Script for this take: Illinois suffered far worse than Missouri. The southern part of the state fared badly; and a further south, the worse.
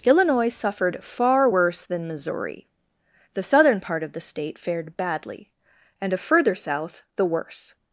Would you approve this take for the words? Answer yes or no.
yes